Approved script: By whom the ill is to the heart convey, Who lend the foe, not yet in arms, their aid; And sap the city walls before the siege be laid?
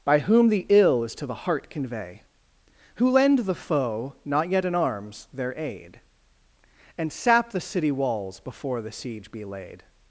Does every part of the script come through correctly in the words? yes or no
yes